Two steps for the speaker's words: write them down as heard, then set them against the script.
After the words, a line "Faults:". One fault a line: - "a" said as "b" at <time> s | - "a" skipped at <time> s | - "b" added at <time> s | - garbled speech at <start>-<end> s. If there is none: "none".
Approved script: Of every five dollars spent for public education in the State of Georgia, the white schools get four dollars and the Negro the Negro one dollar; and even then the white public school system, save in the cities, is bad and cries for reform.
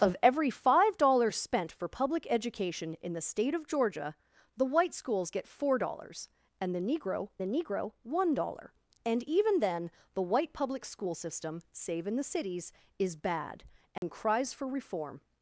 Of every five dollars spent for public education in the State of Georgia, the white schools get four dollars and the Negro the Negro one dollar; and even then the white public school system, save in the cities, is bad and cries for reform.
Faults:
none